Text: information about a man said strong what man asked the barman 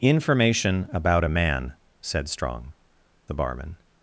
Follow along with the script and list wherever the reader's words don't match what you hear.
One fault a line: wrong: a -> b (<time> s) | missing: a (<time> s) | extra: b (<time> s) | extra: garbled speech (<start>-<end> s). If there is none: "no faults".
missing: what man asked (2.7 s)